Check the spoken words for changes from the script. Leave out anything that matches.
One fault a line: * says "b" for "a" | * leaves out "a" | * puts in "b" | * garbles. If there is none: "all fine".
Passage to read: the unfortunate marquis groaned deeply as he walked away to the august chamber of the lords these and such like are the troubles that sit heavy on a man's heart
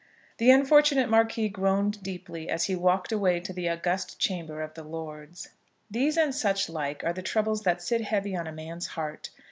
all fine